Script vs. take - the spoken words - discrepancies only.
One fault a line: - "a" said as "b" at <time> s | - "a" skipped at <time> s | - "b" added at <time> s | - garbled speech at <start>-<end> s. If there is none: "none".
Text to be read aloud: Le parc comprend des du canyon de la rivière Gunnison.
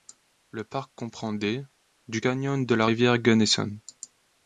none